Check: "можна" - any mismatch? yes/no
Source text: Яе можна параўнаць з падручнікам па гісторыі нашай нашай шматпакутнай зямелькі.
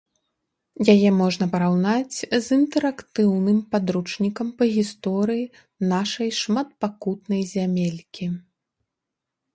no